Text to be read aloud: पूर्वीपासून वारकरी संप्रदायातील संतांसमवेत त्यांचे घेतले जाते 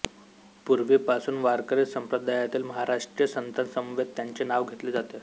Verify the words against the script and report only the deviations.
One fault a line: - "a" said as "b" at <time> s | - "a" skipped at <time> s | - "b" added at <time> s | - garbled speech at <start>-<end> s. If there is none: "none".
- "महाराष्ट्रीय" added at 2.6 s
- "नाव" added at 4.4 s